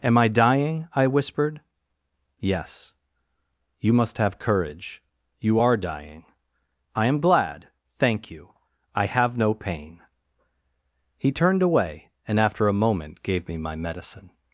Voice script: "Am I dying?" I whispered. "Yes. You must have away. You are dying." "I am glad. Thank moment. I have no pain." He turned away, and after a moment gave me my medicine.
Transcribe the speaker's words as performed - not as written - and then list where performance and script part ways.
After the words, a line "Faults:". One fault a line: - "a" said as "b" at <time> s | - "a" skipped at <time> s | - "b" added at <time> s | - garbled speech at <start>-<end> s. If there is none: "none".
"Am I dying?" I whispered. "Yes. You must have courage. You are dying." "I am glad. Thank you. I have no pain." He turned away, and after a moment gave me my medicine.
Faults:
- "away" said as "courage" at 4.4 s
- "moment" said as "you" at 8.3 s